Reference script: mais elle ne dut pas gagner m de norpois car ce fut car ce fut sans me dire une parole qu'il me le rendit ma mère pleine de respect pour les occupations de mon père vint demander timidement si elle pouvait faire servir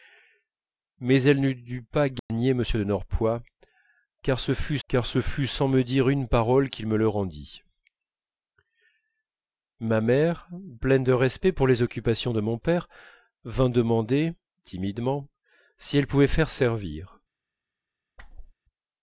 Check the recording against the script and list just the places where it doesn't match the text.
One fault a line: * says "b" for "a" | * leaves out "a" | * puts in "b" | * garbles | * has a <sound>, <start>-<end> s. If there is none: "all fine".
* has a dropout, 2.2-2.3 s
* has a whoosh, 18.2-18.5 s